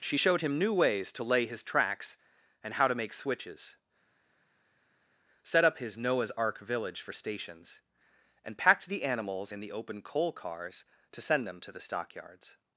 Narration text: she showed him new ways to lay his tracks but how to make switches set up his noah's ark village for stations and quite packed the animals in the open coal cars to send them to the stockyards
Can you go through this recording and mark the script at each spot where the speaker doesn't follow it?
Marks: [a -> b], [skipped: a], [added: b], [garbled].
she showed him new ways to lay his tracks [but -> and] how to make switches set up his noah's ark village for stations and [skipped: quite] packed the animals in the open coal cars to send them to the stockyards